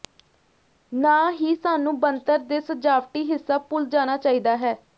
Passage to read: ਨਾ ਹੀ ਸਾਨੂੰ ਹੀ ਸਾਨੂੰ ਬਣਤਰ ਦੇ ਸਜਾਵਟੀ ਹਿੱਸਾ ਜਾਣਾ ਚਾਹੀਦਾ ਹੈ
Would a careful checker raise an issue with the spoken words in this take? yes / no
yes